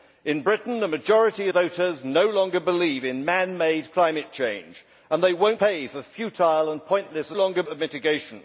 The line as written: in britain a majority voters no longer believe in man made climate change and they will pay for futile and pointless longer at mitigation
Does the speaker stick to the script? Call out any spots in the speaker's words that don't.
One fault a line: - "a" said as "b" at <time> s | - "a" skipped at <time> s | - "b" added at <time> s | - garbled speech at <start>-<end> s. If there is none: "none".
none